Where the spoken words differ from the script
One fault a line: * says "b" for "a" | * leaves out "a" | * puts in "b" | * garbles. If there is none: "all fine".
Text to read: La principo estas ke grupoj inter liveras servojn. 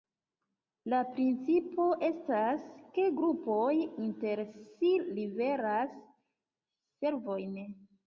* puts in "si"